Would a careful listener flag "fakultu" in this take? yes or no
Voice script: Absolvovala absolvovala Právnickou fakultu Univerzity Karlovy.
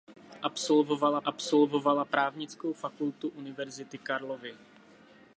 no